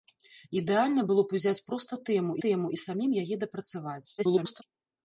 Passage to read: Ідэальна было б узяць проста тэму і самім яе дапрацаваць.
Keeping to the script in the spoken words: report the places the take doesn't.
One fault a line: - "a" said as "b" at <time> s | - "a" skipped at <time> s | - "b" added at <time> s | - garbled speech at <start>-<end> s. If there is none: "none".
- "тэму" added at 2.5 s
- garbled speech at 4.2-4.6 s